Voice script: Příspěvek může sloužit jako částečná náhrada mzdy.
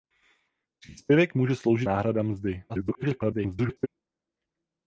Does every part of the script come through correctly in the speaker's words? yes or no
no